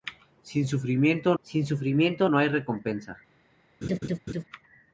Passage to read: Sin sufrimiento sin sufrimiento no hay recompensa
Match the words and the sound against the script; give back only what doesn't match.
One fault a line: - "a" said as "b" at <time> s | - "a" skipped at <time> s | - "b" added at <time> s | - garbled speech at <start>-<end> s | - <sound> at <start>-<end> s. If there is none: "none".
- laugh at 3.8-4.4 s